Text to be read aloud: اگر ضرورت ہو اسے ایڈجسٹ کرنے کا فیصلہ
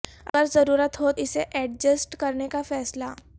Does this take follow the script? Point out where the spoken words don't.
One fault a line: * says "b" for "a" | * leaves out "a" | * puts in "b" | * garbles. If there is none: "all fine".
all fine